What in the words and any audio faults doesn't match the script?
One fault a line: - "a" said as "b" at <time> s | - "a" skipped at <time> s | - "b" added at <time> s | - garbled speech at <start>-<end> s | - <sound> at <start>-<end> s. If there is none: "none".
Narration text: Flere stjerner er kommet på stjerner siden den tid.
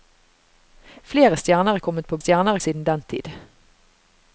none